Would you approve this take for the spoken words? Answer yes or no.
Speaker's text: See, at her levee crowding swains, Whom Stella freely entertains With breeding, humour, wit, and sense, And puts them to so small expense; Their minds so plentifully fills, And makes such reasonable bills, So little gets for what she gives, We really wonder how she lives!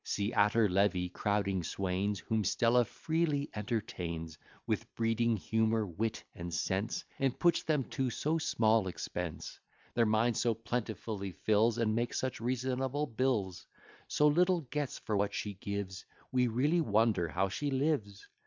yes